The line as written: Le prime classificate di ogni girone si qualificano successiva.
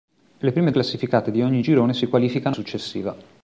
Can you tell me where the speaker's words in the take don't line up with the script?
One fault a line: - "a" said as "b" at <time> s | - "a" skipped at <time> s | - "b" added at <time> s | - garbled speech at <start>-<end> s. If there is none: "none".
none